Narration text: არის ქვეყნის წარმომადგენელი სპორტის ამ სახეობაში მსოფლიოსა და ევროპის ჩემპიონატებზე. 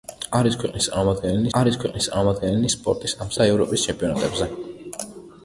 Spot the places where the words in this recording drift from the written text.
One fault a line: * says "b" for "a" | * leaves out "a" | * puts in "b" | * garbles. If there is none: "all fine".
* puts in "არის ქვეყნის წარმომადგენელი"
* leaves out "სახეობაში მსოფლიოსა"